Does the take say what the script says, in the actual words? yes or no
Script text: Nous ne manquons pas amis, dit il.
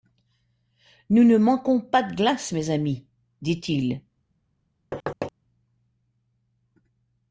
no